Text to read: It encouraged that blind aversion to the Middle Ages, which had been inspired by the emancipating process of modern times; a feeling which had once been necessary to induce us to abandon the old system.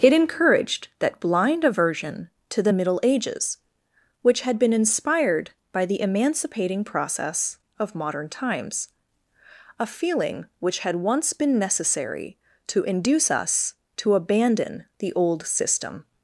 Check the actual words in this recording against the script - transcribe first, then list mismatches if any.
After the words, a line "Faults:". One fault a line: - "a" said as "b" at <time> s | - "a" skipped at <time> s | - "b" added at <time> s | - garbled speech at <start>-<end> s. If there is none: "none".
It encouraged that blind aversion to the Middle Ages, which had been inspired by the emancipating process of modern times; a feeling which had once been necessary to induce us to abandon the old system.
Faults:
none